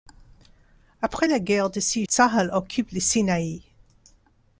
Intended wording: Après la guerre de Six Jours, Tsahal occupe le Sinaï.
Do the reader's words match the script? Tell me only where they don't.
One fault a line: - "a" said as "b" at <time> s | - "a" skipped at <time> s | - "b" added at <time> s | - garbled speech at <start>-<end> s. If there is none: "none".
- "Jours" skipped at 2.0 s